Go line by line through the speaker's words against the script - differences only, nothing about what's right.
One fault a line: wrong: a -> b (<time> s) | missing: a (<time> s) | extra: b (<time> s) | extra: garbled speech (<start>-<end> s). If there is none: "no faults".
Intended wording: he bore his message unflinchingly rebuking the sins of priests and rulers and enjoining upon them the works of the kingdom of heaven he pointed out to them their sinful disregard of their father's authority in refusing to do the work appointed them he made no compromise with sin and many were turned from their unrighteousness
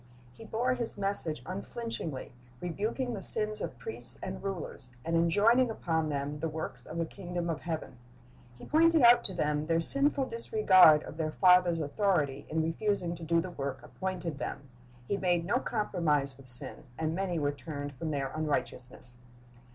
no faults